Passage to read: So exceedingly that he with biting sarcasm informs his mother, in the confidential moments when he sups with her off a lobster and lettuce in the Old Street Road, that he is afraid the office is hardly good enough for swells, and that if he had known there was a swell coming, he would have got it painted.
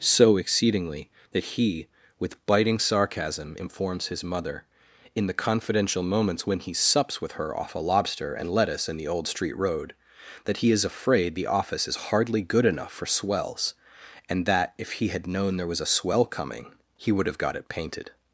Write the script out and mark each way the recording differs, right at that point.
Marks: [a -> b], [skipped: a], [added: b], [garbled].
So exceedingly that he with biting sarcasm informs his mother, in the confidential moments when he sups with her off a lobster and lettuce in the Old Street Road, that he is afraid the office is hardly good enough for swells, and that if he had known there was a swell coming, he would have got it painted.